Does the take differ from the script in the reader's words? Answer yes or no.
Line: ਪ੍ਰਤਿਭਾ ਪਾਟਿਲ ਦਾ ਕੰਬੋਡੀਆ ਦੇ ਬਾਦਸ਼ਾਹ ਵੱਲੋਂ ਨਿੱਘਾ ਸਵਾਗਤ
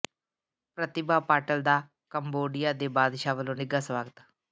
no